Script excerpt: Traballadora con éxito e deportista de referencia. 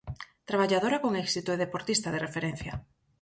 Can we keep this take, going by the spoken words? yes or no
yes